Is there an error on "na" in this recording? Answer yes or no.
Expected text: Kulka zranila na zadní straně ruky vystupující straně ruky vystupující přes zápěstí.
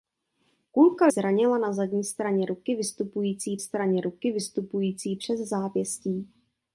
no